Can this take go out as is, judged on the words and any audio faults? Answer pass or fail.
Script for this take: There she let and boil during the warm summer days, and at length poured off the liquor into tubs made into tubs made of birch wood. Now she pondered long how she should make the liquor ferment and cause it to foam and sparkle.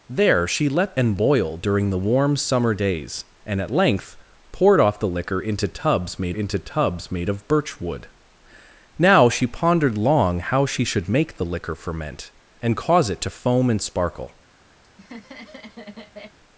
fail